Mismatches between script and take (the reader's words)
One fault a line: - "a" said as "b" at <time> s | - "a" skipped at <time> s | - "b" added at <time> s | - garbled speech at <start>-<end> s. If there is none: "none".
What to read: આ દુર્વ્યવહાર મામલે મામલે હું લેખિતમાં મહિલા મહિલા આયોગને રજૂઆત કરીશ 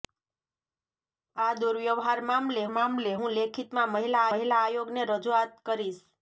none